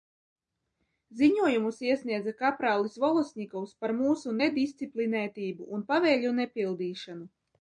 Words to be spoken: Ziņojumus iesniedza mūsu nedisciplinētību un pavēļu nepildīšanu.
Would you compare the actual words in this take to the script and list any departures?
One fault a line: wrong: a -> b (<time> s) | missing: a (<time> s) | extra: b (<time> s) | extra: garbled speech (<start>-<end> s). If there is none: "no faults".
extra: kaprālis Volosņikovs par (2.4 s)